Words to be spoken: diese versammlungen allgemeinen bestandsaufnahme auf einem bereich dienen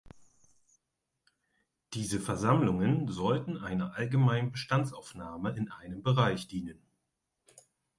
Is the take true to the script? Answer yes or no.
no